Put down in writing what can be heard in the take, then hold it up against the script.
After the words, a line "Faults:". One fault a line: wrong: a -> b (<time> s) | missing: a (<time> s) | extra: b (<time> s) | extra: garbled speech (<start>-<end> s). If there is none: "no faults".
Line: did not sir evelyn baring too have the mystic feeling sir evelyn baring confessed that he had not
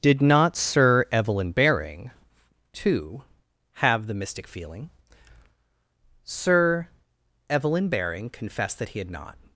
did not sir evelyn baring too have the mystic feeling sir evelyn baring confessed that he had not
Faults:
no faults